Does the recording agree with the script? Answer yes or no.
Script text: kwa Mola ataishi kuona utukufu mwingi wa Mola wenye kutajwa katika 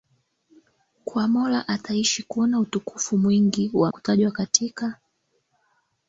no